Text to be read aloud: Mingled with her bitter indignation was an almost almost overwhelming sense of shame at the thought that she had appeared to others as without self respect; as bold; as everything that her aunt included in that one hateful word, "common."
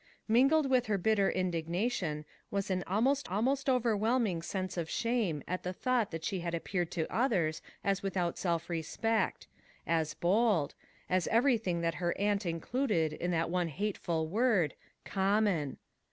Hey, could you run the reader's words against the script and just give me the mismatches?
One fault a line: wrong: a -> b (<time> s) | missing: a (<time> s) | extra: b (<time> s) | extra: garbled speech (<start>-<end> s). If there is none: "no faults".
no faults